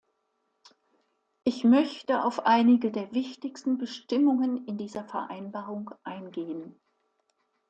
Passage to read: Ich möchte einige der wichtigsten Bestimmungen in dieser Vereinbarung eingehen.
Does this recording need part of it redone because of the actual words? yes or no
yes